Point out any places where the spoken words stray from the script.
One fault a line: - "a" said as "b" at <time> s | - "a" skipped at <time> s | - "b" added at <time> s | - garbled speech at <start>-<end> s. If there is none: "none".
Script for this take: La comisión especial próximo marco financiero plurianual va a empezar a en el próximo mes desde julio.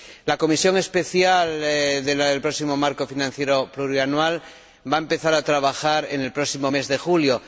- "del" added at 1.6 s
- "trabajar" added at 5.4 s
- "desde" said as "de" at 6.9 s